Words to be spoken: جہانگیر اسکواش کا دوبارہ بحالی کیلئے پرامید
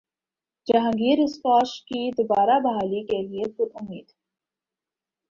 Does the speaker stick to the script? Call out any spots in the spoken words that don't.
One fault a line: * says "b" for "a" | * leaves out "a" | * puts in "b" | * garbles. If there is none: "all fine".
* says "کی" for "کا"